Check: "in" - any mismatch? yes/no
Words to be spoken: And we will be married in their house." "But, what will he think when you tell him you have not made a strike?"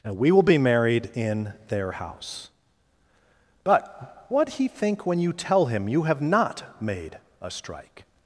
no